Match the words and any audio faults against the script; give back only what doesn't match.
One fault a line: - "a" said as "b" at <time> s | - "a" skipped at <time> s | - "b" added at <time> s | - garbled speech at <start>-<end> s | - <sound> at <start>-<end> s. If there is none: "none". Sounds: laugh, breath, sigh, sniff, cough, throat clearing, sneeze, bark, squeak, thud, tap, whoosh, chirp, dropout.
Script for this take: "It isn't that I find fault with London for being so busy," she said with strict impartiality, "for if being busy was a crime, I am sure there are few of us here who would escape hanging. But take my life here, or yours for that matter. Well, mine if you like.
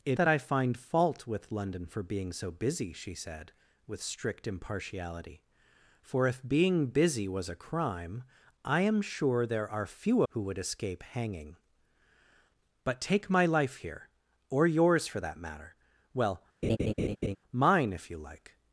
- "isn't" skipped at 0.2 s
- "of us here" skipped at 10.2 s
- laugh at 16.6-17.4 s